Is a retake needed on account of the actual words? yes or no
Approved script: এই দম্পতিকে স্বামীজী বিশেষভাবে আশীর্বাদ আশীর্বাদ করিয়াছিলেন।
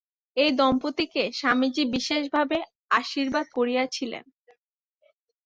yes